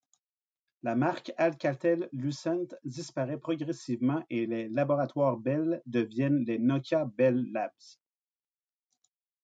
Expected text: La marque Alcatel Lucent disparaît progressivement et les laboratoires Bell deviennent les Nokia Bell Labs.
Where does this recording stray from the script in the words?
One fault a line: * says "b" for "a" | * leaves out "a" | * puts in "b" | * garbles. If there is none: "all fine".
all fine